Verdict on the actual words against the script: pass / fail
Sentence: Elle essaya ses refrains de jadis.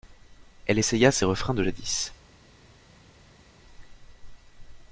pass